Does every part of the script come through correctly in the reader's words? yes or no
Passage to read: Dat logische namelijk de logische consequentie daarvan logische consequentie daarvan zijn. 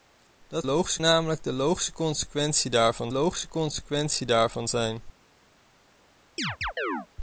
yes